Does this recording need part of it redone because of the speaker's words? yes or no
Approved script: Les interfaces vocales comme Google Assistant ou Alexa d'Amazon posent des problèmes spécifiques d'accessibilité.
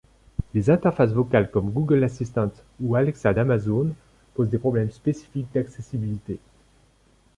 no